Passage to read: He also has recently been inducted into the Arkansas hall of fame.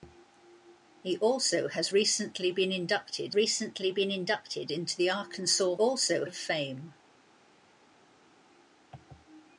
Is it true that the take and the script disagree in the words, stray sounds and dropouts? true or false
true